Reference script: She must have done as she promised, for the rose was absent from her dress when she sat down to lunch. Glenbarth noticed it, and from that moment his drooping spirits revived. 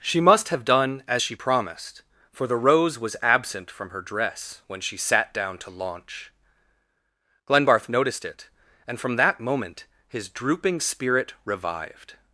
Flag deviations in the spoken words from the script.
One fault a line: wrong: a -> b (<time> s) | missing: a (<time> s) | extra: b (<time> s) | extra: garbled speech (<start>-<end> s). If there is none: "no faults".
wrong: lunch -> launch (5.7 s)
wrong: spirits -> spirit (10.8 s)